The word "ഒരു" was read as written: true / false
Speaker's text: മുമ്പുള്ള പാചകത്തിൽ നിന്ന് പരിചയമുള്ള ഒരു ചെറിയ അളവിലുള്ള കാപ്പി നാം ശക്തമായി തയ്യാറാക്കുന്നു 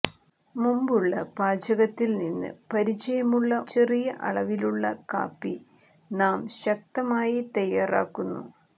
false